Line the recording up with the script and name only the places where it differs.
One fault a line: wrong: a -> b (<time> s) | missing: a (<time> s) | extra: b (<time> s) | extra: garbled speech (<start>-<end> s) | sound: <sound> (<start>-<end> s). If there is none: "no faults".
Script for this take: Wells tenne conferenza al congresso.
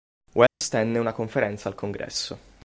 sound: dropout (0.5-0.6 s)
extra: una (1.0 s)